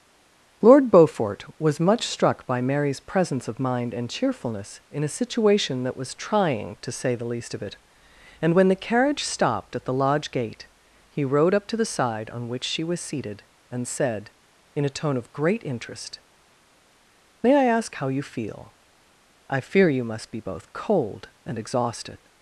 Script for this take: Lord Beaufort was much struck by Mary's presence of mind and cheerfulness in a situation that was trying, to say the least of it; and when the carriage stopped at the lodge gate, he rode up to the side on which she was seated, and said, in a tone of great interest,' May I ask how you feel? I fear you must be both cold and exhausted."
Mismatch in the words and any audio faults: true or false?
false